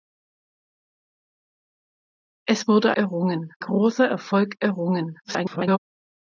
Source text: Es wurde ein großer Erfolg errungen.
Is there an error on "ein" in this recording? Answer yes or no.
yes